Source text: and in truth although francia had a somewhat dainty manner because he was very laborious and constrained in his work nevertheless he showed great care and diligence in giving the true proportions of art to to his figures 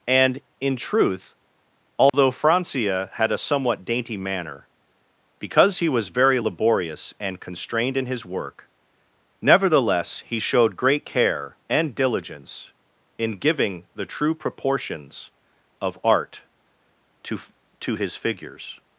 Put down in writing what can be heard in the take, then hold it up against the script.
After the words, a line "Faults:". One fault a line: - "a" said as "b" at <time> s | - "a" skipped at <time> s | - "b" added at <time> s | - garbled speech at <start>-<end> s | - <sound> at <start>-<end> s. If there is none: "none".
and in truth although francia had a somewhat dainty manner because he was very laborious and constrained in his work nevertheless he showed great care and diligence in giving the true proportions of art to to his figures
Faults:
- dropout at 2.1-2.1 s